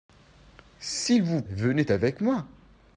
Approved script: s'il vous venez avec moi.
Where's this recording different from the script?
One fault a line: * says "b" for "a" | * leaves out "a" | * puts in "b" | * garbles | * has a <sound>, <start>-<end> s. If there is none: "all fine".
all fine